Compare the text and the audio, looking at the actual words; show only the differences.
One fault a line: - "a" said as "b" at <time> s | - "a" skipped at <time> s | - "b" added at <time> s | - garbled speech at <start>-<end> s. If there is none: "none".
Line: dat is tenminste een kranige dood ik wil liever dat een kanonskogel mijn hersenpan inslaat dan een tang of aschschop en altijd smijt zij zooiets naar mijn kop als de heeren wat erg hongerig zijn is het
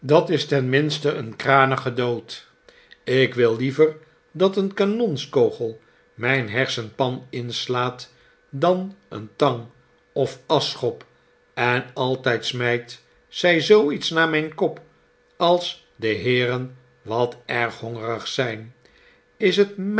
none